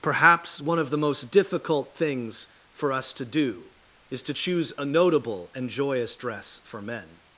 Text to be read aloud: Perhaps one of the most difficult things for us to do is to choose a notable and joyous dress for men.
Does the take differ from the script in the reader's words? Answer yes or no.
no